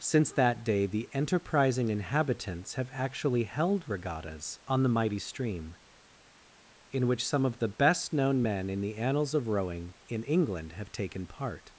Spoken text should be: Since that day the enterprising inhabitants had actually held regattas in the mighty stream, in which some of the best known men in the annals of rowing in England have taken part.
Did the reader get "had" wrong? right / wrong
wrong